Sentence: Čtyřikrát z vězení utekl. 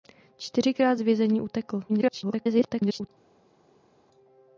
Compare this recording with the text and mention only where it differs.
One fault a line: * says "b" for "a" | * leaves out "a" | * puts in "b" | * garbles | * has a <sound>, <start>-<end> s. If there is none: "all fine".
* garbles